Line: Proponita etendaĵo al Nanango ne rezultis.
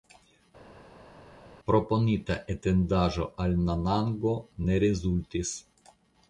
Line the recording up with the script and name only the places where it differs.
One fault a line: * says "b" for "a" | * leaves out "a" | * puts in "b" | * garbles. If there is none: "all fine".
all fine